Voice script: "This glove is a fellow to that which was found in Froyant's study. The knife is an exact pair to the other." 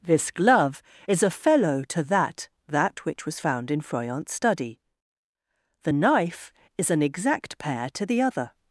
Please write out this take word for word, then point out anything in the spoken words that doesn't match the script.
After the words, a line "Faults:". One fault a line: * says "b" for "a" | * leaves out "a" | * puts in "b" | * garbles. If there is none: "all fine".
"This glove is a fellow to that that which was found in Froyant's study. The knife is an exact pair to the other."
Faults:
* puts in "that"